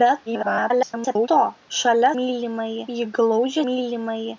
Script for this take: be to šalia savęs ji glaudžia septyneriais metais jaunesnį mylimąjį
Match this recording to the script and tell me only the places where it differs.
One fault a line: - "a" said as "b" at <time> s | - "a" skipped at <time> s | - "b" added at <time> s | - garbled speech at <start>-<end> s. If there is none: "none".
- garbled speech at 0.3-1.3 s
- "savęs" said as "mylimąjį" at 2.2 s
- "septyneriais metais jaunesnį" skipped at 3.6 s